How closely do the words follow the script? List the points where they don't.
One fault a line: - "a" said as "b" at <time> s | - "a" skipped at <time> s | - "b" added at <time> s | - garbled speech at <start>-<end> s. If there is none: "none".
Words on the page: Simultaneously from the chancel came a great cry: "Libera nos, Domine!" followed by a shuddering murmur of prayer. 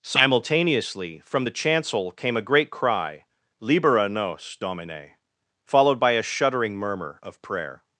none